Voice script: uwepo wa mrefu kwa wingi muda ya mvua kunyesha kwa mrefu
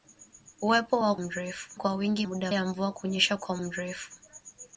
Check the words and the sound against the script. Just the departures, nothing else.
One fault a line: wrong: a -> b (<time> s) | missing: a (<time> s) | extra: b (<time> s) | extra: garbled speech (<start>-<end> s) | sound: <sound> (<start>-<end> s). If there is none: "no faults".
no faults